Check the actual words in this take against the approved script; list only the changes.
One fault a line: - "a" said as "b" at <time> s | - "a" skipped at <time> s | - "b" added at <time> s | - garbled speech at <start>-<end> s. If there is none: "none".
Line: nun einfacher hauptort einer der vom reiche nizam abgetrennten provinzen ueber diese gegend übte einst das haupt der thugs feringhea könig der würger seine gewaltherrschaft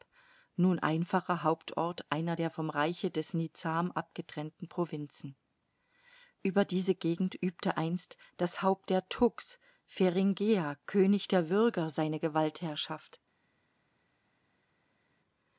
- "des" added at 3.1 s